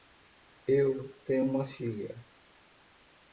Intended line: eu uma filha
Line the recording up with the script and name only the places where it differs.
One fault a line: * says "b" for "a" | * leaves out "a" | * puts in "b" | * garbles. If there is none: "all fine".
* puts in "tenho"